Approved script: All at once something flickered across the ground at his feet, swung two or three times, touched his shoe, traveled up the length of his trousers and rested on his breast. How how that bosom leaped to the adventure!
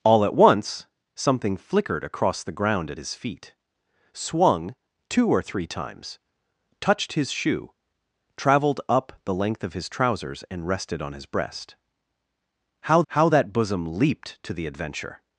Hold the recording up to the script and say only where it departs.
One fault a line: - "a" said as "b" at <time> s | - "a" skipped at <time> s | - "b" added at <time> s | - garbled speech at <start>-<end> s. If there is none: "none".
none